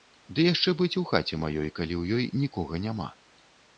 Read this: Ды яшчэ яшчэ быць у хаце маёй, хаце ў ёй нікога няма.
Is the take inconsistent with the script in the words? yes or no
yes